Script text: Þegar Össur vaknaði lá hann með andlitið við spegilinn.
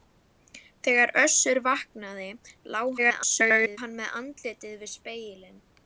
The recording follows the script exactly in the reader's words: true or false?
false